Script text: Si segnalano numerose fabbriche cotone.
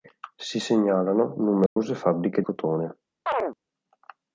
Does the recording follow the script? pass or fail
pass